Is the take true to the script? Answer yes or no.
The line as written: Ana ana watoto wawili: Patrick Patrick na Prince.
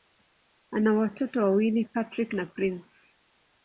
no